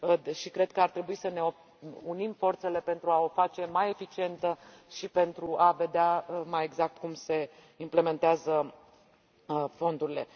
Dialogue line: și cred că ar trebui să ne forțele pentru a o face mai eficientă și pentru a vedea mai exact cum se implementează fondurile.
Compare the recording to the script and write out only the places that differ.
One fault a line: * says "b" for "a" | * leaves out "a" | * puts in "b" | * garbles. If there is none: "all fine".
* puts in "unim"